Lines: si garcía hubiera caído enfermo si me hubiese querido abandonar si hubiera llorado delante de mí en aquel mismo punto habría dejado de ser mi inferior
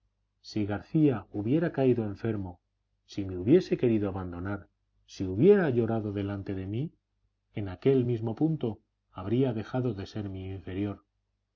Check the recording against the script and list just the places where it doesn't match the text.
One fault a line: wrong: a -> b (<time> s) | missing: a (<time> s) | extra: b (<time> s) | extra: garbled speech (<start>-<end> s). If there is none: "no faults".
no faults